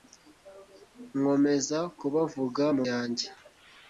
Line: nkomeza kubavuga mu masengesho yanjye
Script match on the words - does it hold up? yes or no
no